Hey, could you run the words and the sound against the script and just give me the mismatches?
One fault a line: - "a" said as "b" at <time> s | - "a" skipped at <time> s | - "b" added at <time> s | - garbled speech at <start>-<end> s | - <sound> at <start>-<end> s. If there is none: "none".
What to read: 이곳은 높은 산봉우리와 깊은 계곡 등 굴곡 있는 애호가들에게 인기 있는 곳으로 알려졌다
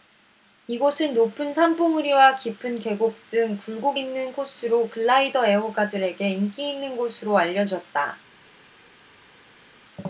- "코스로 글라이더" added at 4.3 s